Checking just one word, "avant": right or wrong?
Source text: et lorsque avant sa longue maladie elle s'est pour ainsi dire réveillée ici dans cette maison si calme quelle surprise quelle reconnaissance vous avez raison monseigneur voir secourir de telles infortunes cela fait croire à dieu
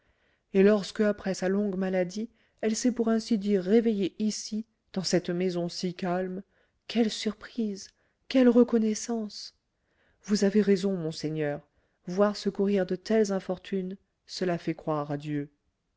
wrong